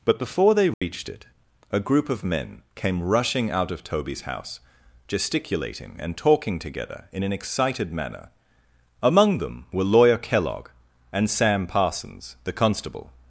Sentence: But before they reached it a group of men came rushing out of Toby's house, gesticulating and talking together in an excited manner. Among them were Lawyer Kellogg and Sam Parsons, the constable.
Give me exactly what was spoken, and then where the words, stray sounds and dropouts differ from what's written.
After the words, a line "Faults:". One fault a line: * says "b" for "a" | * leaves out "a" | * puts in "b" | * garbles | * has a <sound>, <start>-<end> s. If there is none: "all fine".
But before they reached it a group of men came rushing out of Toby's house, gesticulating and talking together in an excited manner. Among them were Lawyer Kellogg and Sam Parsons, the constable.
Faults:
* has a dropout, 0.7-0.8 s